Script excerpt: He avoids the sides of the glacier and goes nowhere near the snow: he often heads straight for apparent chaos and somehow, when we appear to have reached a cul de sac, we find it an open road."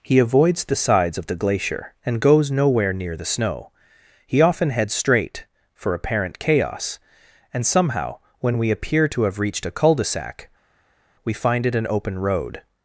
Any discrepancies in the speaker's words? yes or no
no